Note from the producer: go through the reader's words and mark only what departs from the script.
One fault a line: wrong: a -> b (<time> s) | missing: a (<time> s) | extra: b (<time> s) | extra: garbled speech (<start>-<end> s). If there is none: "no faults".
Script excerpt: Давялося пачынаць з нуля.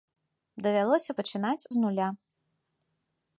no faults